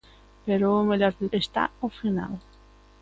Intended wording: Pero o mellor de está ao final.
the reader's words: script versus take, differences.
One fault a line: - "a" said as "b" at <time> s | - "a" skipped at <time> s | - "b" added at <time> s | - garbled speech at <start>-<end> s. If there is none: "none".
none